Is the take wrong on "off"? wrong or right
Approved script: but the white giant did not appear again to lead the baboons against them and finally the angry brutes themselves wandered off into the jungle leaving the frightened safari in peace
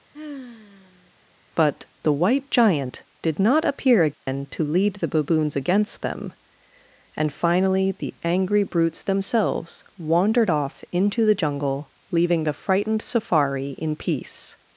right